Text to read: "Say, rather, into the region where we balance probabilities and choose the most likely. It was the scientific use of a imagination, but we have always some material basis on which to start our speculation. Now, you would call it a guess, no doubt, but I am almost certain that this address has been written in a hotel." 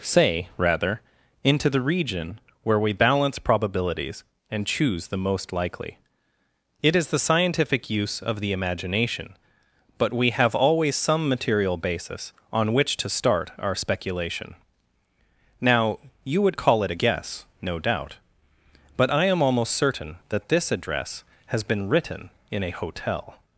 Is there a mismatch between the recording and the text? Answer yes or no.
yes